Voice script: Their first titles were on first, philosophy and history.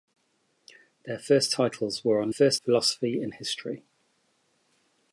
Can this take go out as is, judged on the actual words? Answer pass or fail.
pass